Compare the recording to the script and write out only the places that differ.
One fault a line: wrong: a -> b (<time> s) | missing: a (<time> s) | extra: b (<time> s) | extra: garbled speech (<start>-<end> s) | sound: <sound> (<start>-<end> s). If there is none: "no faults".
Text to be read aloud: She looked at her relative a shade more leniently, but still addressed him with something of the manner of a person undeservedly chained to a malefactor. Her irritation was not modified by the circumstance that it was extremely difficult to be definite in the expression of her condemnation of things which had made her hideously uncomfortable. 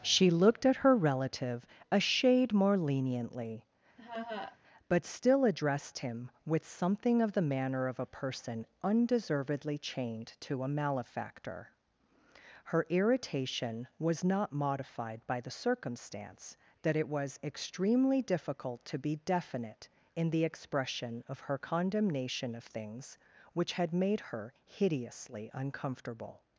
sound: laugh (4.0-4.6 s)